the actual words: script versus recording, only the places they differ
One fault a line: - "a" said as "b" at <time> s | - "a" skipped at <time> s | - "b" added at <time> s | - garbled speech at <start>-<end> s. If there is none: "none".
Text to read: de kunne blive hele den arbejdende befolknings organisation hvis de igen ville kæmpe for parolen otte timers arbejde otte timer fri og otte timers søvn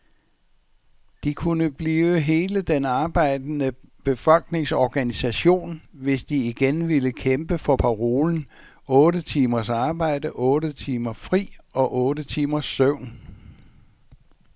none